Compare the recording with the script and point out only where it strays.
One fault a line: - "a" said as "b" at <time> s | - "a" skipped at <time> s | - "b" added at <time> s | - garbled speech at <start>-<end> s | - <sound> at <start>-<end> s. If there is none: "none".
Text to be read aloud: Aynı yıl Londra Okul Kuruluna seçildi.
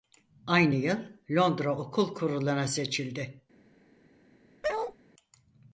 - bark at 4.6-5.0 s